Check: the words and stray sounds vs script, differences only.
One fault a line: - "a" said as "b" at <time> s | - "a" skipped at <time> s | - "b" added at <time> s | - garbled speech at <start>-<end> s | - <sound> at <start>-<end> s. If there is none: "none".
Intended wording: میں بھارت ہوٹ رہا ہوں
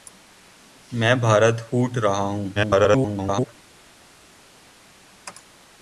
- garbled speech at 2.5-3.5 s